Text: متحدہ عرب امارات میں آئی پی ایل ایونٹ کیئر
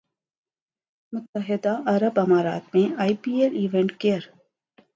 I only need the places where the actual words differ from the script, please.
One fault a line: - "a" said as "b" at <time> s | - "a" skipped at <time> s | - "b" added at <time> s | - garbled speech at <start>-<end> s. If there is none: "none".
none